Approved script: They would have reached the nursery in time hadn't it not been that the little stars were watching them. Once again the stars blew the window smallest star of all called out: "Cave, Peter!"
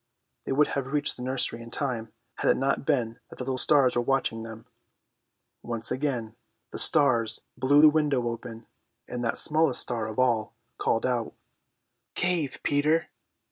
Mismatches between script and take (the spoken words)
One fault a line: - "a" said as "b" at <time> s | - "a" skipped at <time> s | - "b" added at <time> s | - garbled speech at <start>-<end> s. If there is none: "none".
- "hadn't" said as "had" at 2.4 s
- "open and that" added at 8.3 s